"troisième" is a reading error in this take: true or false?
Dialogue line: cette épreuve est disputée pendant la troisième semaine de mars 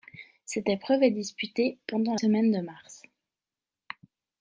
true